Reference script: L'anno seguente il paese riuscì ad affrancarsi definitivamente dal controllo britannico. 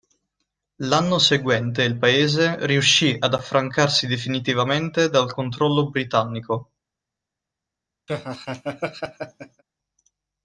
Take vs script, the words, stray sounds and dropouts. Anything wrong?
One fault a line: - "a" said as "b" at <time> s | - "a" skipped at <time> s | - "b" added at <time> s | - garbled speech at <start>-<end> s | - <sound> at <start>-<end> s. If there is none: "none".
- laugh at 8.1-9.6 s